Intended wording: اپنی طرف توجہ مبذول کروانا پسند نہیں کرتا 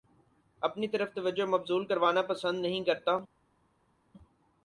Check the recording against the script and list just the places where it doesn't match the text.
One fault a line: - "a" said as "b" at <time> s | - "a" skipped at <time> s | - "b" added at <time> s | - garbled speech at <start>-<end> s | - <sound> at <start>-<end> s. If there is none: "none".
none